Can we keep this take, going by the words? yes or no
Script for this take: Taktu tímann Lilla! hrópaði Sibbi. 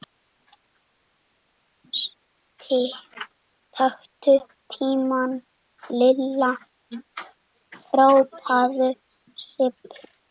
yes